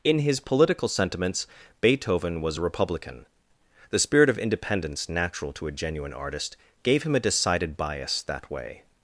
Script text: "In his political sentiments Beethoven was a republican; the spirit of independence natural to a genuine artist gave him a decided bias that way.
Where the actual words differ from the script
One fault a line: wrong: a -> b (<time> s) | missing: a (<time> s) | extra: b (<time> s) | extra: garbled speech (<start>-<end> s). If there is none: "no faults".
no faults